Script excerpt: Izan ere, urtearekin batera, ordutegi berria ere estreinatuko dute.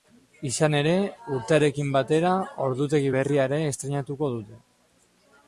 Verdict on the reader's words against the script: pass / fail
pass